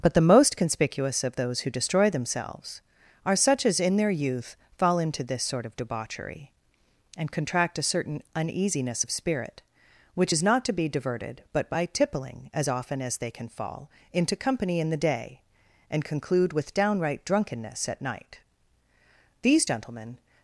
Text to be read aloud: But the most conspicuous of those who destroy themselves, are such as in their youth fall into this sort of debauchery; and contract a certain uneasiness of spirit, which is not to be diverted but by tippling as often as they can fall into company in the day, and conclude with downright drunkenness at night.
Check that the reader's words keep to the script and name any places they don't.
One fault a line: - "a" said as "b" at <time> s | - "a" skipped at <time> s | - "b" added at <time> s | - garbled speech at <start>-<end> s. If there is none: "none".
- "These gentlemen" added at 19.4 s